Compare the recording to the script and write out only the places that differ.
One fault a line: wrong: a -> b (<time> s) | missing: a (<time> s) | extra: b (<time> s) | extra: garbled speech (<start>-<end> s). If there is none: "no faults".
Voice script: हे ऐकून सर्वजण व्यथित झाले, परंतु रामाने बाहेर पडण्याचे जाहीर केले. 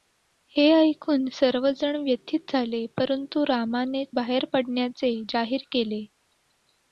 no faults